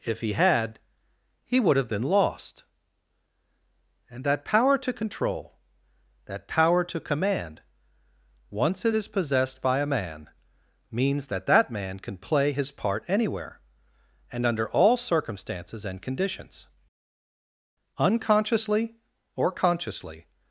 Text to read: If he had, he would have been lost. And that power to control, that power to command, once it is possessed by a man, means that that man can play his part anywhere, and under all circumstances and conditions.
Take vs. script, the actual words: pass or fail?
fail